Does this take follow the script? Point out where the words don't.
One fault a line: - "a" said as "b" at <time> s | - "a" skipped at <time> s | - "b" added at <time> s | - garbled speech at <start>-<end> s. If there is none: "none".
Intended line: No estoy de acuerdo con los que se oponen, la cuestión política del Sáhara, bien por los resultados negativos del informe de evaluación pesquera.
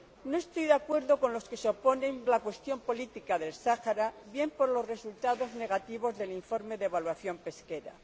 none